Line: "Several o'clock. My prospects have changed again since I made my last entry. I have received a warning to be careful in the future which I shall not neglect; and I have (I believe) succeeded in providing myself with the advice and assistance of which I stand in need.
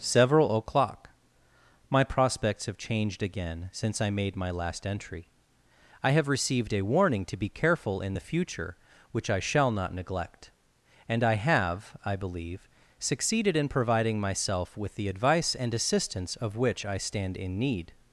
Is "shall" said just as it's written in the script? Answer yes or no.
yes